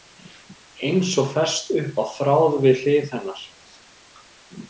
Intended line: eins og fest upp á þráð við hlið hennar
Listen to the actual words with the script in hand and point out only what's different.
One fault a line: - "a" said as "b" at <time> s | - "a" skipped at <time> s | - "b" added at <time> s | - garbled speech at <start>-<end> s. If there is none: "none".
none